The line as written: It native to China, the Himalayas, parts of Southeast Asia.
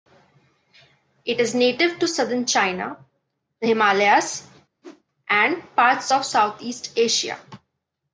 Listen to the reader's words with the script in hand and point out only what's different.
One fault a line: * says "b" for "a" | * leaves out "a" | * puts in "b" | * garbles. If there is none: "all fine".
* puts in "is"
* puts in "southern"
* puts in "and"